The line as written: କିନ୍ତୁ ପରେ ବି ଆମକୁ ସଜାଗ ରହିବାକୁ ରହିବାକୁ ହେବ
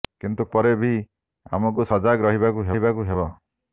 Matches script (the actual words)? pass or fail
pass